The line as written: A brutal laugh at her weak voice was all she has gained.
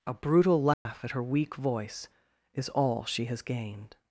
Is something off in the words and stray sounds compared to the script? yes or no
yes